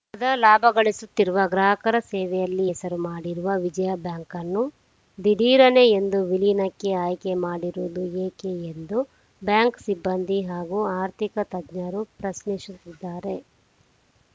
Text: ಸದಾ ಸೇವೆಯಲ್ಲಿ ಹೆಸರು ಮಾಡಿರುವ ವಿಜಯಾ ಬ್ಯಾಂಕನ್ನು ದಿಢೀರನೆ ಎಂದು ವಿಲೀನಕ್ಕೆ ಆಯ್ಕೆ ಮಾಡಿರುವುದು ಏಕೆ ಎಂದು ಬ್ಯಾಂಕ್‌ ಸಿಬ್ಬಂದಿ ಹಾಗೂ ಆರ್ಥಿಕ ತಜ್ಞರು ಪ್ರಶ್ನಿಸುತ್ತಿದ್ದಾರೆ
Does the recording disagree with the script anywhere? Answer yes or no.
yes